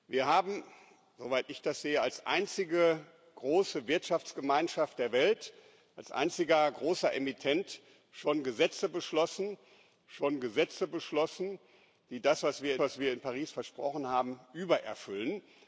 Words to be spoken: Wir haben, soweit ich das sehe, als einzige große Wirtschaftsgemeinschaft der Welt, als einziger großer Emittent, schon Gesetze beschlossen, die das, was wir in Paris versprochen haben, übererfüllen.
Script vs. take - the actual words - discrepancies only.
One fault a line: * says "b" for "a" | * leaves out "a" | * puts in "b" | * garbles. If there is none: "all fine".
* puts in "schon Gesetze beschlossen"
* puts in "was wir"